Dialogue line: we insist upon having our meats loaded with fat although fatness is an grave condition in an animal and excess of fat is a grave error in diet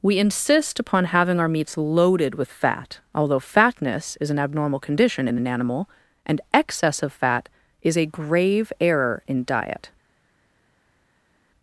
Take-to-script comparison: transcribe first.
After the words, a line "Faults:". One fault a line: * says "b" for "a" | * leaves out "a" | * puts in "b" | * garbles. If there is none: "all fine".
we insist upon having our meats loaded with fat although fatness is an abnormal condition in an animal and excess of fat is a grave error in diet
Faults:
* says "abnormal" for "grave"